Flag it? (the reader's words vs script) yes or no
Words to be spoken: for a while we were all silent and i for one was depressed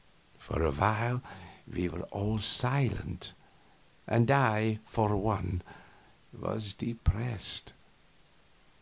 no